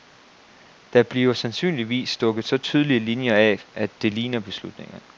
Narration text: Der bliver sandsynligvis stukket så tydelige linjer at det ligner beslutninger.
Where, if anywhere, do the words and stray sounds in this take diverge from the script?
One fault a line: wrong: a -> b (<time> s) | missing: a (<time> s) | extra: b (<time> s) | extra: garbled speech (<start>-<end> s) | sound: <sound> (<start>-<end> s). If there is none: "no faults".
extra: af (3.4 s)